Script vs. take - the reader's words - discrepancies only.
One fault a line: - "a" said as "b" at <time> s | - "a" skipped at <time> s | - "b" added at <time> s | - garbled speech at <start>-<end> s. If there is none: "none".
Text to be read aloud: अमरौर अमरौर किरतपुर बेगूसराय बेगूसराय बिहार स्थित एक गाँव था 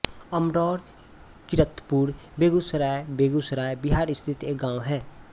- "अमरौर" skipped at 0.8 s
- "था" said as "है" at 4.8 s